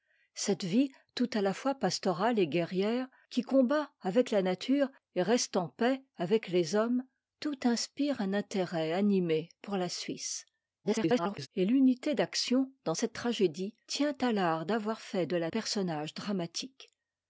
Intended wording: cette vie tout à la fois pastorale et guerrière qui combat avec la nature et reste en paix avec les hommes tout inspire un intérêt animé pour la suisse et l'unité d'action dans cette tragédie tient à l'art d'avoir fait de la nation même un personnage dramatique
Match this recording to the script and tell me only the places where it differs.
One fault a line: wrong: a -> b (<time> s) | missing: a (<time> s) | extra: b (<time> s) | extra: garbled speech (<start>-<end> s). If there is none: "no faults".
extra: garbled speech (10.8-11.5 s)
missing: nation même un (15.5 s)